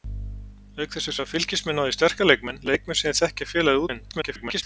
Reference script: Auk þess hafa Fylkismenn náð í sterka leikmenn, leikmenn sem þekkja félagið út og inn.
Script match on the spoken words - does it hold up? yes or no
no